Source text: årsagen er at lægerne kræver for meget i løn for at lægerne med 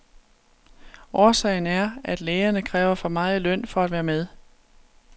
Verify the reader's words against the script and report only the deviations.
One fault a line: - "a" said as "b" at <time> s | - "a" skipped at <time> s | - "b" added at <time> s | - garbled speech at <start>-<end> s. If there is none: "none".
- "lægerne" said as "være" at 3.9 s